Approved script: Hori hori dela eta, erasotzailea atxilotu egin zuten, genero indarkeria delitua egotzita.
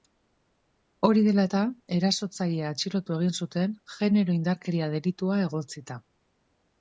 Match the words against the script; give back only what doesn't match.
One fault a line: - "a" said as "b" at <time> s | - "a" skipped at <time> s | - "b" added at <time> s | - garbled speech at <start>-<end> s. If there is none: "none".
- "hori" skipped at 1.2 s